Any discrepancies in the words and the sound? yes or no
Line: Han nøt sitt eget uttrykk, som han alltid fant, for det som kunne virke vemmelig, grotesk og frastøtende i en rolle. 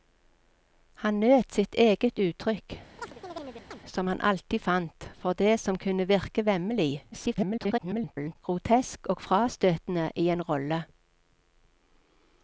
yes